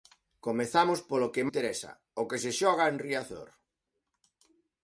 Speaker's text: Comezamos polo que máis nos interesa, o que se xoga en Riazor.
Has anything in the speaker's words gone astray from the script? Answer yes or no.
yes